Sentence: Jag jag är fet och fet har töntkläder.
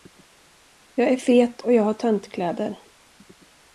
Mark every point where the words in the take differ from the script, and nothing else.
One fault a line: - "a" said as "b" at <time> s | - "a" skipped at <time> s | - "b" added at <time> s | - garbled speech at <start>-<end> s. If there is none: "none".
- "jag" skipped at 1.1 s
- "fet" said as "jag" at 1.7 s